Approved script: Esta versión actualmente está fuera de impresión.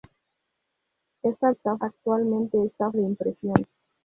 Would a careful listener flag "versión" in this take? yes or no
yes